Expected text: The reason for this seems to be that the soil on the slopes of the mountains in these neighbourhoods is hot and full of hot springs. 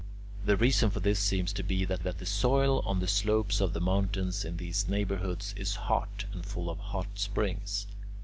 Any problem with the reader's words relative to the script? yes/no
yes